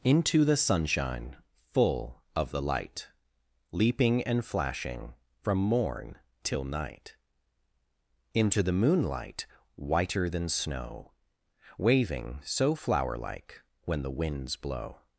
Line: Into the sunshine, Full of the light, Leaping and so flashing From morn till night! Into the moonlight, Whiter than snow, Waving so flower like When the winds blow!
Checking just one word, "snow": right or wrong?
right